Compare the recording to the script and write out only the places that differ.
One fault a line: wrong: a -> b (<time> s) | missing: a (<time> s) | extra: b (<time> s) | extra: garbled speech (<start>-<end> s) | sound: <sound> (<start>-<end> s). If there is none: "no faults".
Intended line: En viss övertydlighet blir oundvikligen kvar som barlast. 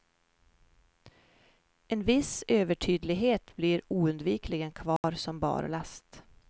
sound: dropout (5.0-5.0 s)